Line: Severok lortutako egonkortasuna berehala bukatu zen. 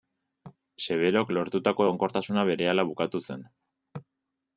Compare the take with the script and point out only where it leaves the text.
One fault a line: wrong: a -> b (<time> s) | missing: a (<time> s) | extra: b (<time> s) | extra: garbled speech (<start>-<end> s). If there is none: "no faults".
no faults